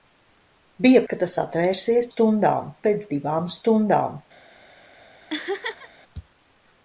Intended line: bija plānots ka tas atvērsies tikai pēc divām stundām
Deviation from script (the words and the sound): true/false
true